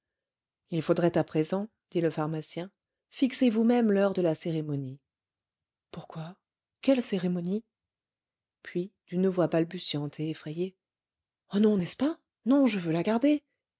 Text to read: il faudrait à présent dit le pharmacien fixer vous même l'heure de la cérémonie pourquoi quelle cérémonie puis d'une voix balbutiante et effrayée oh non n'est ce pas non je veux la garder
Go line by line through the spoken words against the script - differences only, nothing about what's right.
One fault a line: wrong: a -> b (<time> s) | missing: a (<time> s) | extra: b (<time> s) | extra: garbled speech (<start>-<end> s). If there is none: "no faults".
no faults